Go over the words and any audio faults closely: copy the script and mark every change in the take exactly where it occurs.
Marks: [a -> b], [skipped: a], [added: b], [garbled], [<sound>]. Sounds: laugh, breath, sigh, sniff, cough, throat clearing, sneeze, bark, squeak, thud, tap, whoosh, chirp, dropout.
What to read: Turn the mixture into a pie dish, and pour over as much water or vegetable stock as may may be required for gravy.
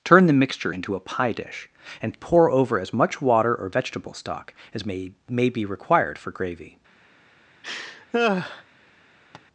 Turn the mixture into a pie dish, and pour over as much water or vegetable stock as may may be required for gravy. [laugh] [tap]